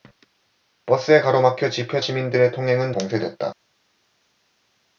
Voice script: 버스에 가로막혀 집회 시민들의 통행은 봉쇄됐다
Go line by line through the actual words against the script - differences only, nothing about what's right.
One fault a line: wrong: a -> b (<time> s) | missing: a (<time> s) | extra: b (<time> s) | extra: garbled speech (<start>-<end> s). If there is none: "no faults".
no faults